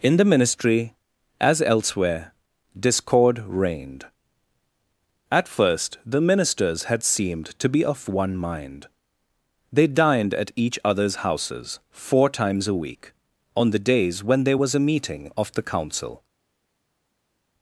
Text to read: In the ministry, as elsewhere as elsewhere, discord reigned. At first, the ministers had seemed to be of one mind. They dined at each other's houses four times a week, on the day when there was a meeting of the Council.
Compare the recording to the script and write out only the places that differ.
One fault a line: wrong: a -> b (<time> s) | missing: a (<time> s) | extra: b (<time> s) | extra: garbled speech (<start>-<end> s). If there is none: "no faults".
missing: as elsewhere (2.3 s)
wrong: day -> days (13.8 s)